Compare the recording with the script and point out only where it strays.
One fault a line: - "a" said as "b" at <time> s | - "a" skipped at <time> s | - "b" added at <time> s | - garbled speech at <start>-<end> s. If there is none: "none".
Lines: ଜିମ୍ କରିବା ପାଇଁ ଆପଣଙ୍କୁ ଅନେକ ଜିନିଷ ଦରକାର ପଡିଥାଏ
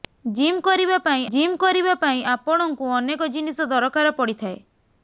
- "ଜିମ୍ କରିବା ପାଇଁ" added at 1.3 s